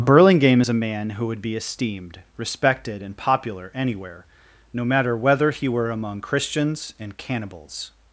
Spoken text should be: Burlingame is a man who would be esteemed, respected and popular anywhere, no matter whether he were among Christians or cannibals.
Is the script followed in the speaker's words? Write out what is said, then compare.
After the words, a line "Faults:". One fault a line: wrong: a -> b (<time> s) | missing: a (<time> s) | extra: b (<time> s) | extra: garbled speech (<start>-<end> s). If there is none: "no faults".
Burlingame is a man who would be esteemed, respected and popular anywhere, no matter whether he were among Christians and cannibals.
Faults:
wrong: or -> and (7.0 s)